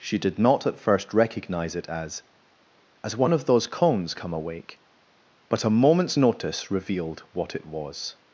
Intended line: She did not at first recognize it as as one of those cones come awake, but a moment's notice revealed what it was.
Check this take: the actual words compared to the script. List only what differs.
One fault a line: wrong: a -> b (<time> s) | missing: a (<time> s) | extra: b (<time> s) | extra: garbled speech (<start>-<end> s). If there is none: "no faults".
no faults